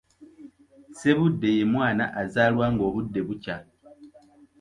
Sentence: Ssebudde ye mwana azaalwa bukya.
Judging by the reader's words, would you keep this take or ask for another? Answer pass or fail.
fail